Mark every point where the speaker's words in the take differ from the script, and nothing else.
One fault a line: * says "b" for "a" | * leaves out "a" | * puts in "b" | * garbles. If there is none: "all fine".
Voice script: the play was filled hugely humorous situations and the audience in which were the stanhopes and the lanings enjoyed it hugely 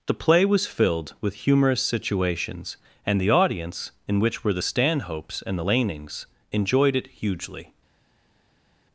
* says "with" for "hugely"